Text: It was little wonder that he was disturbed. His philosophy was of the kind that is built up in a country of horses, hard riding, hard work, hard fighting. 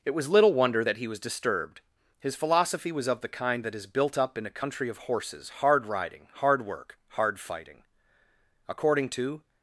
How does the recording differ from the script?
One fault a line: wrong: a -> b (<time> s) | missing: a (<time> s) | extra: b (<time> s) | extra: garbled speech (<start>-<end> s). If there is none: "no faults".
extra: According to (8.7 s)